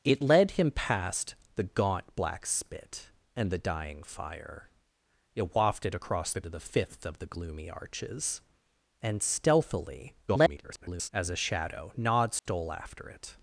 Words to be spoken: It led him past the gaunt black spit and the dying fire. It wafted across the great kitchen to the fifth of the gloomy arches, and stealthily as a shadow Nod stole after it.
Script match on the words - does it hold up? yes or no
no